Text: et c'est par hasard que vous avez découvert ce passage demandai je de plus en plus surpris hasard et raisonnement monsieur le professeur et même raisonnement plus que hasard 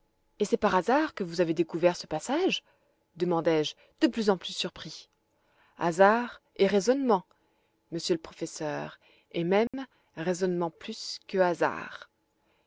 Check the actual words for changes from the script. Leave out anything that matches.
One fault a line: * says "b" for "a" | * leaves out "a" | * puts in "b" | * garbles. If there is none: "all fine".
all fine